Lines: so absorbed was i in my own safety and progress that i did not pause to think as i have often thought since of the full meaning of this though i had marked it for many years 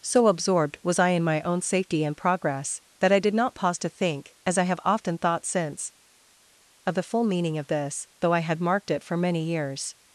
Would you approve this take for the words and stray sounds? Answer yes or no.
yes